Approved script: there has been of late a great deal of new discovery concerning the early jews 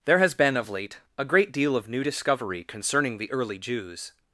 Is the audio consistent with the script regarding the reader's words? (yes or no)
yes